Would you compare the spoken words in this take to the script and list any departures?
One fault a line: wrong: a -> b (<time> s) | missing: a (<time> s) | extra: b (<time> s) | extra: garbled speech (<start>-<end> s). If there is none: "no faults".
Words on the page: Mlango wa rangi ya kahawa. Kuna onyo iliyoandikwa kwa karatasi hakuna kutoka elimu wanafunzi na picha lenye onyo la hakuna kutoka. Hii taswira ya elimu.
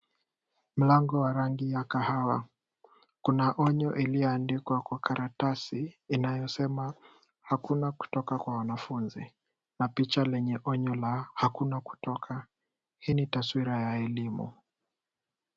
extra: inayosema (6.1 s)
wrong: elimu -> kwa (8.4 s)
extra: ni (13.1 s)